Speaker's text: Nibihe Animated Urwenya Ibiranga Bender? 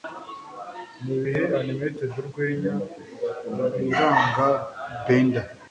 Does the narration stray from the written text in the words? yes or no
no